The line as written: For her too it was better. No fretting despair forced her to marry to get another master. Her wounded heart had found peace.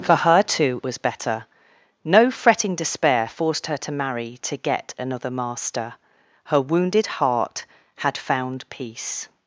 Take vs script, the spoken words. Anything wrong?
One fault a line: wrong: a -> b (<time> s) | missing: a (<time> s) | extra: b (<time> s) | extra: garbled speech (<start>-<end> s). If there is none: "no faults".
missing: it (0.8 s)